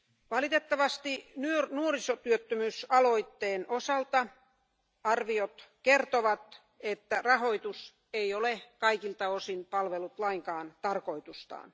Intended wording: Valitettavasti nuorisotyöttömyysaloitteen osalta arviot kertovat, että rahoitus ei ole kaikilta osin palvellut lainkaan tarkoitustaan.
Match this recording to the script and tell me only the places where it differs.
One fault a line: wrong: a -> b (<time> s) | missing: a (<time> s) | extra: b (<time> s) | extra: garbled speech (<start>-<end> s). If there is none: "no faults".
no faults